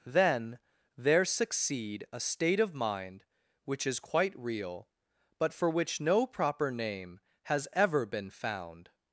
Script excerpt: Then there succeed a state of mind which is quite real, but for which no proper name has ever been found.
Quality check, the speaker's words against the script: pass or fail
pass